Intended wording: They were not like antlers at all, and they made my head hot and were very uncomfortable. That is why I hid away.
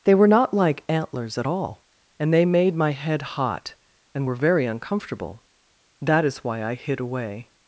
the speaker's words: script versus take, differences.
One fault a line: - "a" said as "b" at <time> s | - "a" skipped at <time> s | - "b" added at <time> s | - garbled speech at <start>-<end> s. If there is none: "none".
none